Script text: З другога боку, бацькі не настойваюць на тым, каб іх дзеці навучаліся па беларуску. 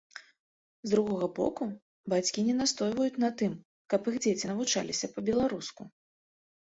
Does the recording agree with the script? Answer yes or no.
yes